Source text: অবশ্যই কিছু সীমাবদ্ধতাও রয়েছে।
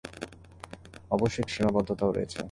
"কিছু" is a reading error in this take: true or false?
true